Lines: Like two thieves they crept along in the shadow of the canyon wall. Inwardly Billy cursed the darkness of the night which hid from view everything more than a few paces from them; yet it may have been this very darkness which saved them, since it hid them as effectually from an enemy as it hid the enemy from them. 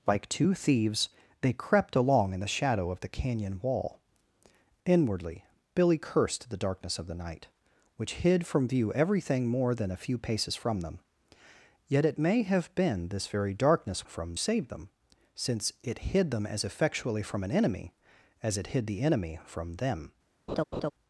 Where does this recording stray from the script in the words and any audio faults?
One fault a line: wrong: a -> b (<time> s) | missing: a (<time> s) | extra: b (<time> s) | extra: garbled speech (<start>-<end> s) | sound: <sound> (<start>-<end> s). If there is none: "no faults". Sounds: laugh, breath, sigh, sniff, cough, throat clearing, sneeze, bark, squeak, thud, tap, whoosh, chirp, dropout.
wrong: which -> from (14.1 s)
sound: laugh (20.5-20.9 s)